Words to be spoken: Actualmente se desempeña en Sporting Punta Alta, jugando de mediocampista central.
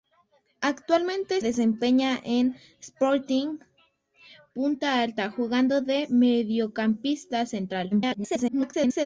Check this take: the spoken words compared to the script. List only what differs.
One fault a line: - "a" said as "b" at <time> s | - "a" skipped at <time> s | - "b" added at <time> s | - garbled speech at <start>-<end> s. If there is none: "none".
- "se" skipped at 1.4 s
- garbled speech at 7.9-9.1 s